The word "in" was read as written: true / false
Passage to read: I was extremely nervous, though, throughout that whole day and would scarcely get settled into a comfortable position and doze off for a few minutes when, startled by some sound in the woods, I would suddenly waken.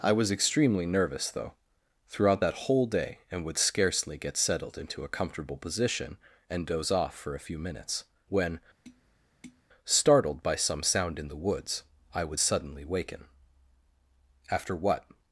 true